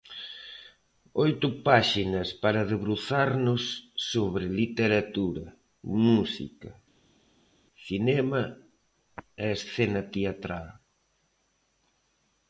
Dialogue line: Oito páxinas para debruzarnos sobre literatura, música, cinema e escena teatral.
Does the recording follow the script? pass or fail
pass